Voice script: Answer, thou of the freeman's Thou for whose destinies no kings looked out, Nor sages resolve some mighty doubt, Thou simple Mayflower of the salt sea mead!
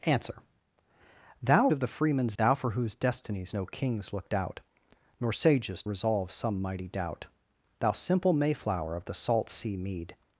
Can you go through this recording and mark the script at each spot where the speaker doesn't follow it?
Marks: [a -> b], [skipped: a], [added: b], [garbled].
Answer, thou of the freeman's Thou for whose destinies no kings looked out, Nor sages resolve some mighty doubt, Thou simple Mayflower of the salt sea mead!